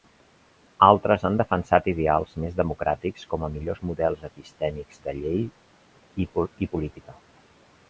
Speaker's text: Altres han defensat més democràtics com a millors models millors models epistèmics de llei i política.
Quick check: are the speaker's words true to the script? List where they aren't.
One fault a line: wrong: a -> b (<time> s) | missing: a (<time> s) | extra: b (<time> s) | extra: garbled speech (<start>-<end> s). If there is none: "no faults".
extra: ideals (1.9 s)
missing: millors models (4.2 s)